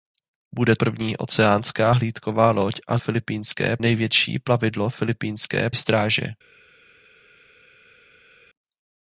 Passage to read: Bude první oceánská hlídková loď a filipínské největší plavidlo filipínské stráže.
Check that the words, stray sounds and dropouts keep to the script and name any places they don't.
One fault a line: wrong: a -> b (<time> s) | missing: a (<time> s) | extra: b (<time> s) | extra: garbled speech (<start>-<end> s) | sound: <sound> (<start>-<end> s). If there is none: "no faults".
no faults